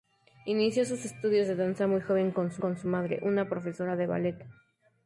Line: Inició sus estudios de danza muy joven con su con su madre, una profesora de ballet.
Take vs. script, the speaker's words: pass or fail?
pass